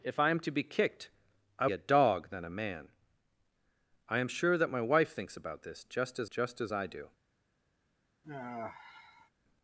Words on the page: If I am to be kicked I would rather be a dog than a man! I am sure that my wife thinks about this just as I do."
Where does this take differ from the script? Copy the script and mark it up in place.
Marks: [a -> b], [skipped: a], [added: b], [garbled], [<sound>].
If I am to be kicked I [skipped: would rather be] a dog than a man! I am sure that my wife thinks about this just as [added: just as] I do." [sigh]